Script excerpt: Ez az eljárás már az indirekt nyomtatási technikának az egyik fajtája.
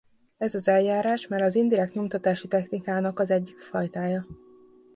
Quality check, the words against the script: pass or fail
pass